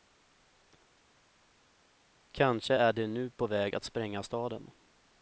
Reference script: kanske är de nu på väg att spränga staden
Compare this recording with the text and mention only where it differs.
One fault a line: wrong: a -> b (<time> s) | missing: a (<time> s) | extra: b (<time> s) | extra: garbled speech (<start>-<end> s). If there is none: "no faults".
no faults